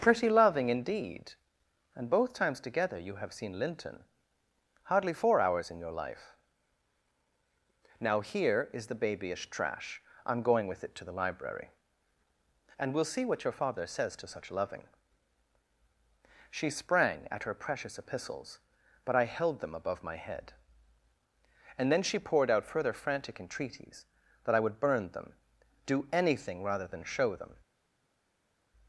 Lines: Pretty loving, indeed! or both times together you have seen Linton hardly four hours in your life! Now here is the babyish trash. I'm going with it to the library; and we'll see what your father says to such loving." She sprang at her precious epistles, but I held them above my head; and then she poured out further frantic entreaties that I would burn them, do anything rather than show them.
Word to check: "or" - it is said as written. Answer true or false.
false